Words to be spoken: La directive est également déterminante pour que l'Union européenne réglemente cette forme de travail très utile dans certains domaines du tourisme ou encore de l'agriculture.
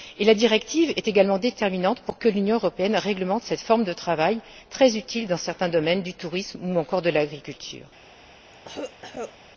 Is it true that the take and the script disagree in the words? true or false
false